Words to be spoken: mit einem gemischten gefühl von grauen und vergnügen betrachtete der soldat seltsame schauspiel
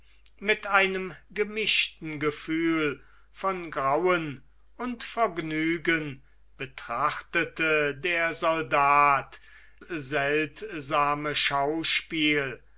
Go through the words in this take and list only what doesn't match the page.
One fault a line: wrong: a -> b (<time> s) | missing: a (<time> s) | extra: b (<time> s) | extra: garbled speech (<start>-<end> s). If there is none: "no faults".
no faults